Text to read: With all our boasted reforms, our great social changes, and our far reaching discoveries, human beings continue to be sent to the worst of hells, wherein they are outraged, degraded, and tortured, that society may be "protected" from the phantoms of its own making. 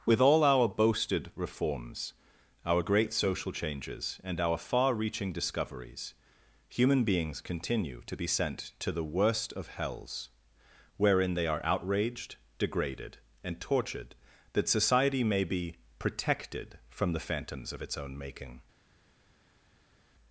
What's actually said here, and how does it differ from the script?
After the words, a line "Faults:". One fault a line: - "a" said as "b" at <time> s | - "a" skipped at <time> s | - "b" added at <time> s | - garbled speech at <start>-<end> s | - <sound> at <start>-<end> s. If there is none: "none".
With all our boasted reforms, our great social changes, and our far reaching discoveries, human beings continue to be sent to the worst of hells, wherein they are outraged, degraded, and tortured, that society may be "protected" from the phantoms of its own making.
Faults:
none